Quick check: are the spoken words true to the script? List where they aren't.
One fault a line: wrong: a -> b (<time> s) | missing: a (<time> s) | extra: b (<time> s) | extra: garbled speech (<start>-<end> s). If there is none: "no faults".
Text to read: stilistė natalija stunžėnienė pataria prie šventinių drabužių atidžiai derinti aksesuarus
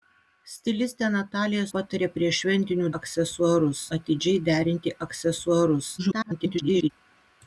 missing: stunžėnienė (1.6 s)
wrong: drabužių -> aksesuarus (3.0 s)
extra: garbled speech (6.0-6.9 s)